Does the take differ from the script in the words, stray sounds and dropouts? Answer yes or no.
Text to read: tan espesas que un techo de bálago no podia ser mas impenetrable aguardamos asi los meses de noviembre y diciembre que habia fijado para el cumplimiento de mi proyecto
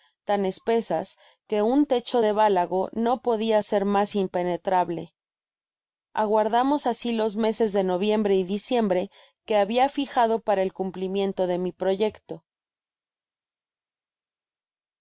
no